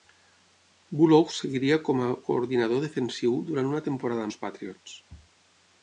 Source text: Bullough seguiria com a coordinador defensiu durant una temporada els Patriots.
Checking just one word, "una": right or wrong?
right